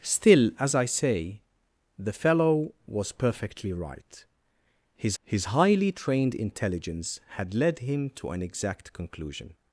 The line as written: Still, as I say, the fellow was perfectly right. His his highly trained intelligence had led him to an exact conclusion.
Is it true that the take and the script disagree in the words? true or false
false